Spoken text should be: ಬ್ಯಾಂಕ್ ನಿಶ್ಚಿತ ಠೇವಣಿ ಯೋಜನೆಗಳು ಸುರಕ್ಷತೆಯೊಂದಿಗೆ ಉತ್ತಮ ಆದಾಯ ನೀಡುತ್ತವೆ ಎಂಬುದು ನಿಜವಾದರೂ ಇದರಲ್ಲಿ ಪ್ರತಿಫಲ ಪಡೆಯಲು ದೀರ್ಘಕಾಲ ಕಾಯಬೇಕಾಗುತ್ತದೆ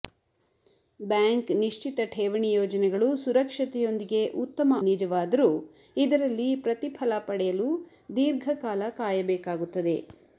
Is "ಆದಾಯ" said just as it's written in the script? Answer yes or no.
no